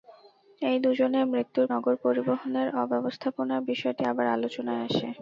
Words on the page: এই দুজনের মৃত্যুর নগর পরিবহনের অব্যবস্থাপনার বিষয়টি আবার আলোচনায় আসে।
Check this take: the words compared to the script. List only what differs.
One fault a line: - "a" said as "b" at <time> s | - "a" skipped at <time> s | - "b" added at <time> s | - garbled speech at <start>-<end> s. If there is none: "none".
none